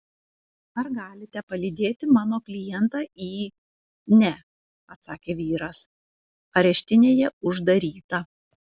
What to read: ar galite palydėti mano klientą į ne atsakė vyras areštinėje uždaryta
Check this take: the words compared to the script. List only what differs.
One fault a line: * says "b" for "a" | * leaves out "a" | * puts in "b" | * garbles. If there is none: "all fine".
all fine